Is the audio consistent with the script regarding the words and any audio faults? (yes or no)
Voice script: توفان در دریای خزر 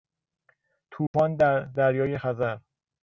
no